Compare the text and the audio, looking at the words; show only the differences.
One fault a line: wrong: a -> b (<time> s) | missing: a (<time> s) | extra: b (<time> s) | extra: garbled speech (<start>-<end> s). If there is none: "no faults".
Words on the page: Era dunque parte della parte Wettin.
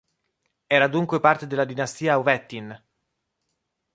wrong: parte -> dinastia (1.6 s)